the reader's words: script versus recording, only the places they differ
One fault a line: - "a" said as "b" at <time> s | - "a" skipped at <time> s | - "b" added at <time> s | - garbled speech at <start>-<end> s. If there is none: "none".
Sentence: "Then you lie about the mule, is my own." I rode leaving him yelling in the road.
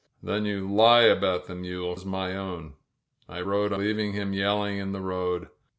none